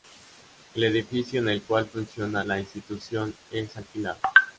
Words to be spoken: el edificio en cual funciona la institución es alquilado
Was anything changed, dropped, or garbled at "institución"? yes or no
no